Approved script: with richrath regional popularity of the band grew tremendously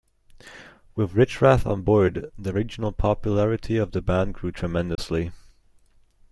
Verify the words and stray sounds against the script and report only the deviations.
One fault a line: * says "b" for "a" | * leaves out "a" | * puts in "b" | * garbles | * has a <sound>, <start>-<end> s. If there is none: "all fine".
* puts in "on board the"
* has a dropout, 4.9-5.0 s